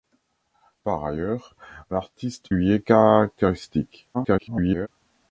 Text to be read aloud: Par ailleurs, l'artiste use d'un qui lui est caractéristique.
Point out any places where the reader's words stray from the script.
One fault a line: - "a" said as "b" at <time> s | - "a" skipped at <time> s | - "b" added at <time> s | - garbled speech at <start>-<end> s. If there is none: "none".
- "use d'un qui" skipped at 2.5 s
- garbled speech at 4.1-4.9 s